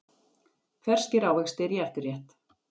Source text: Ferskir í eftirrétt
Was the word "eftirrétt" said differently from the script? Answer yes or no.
no